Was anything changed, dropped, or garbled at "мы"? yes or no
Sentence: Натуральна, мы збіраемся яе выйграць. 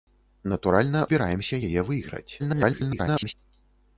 yes